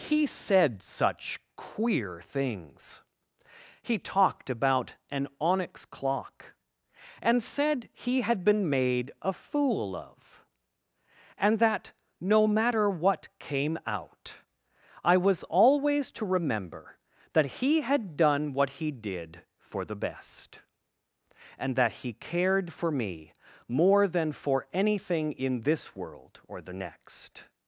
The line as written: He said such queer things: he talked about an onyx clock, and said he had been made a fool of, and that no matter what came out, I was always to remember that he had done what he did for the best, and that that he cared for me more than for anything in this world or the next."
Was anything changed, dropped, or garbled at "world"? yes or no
no